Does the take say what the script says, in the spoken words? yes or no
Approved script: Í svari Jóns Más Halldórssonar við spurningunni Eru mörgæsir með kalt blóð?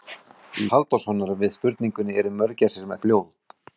no